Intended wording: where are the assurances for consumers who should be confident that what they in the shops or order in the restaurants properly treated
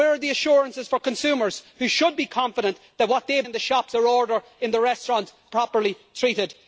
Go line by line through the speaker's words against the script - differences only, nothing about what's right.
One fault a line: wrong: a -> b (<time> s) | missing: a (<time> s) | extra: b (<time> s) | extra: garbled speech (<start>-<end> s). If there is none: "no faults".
no faults